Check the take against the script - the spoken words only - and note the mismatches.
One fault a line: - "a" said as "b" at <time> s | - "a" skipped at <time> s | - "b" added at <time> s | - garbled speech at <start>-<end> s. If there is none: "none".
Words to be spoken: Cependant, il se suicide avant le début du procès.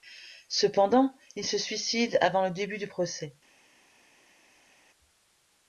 none